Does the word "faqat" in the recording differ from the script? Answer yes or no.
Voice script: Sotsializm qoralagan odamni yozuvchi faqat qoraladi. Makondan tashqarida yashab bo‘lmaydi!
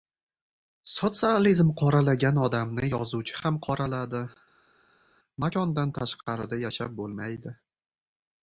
yes